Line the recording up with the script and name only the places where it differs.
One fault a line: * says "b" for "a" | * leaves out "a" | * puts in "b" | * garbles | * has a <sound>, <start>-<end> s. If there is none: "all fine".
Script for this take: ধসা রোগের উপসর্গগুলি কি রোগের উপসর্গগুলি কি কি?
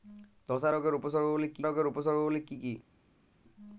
all fine